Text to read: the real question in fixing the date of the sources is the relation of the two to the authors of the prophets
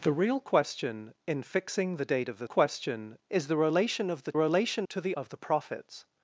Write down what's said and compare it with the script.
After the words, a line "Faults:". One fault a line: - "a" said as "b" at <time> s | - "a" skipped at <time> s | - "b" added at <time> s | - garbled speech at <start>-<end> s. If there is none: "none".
the real question in fixing the date of the question is the relation of the relation to the of the prophets
Faults:
- "sources" said as "question" at 2.4 s
- "two" said as "relation" at 4.3 s
- "authors" skipped at 5.2 s